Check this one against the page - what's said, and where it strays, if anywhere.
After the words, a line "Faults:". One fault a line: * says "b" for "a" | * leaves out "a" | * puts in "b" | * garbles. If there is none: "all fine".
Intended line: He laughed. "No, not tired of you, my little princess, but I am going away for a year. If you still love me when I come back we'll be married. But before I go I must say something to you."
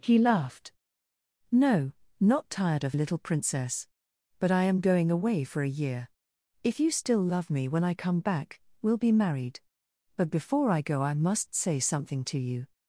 He laughed. "No, not tired of little princess, but I am going away for a year. If you still love me when I come back we'll be married. But before I go I must say something to you."
Faults:
* leaves out "you my"